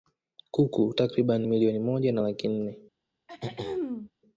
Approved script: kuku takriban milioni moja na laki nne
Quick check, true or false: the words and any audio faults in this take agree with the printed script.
false